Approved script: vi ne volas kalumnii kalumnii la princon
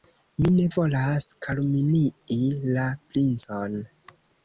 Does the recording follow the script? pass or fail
fail